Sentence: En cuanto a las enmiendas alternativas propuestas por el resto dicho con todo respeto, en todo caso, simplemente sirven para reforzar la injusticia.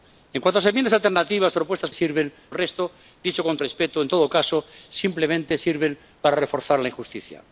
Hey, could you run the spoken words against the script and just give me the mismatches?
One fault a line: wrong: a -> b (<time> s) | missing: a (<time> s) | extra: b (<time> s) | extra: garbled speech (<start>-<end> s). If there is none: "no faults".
wrong: por -> sirven (1.9 s)
missing: todo (3.6 s)